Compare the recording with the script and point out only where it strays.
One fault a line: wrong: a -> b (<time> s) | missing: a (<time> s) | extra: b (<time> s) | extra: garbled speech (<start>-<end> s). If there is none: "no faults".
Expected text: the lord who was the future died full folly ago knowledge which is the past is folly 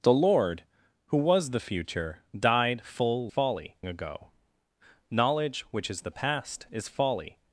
no faults